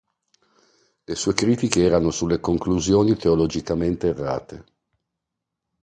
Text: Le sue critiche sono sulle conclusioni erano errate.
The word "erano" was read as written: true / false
false